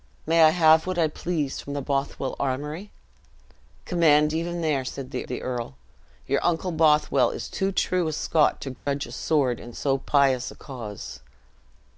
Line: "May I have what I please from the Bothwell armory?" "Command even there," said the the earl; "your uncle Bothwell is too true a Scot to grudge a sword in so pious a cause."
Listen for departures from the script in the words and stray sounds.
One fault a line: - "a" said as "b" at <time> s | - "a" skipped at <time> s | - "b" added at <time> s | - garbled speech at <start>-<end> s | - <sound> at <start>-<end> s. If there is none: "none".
- dropout at 8.8-8.9 s